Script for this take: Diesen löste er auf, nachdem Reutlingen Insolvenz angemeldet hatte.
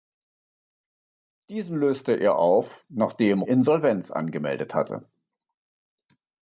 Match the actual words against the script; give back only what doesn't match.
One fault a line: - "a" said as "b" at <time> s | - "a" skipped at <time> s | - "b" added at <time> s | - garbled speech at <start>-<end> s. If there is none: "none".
- "Reutlingen" skipped at 3.4 s